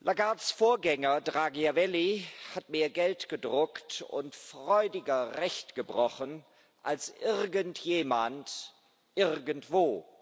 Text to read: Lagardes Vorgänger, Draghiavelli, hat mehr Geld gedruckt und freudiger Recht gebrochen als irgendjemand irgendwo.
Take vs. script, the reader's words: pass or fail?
pass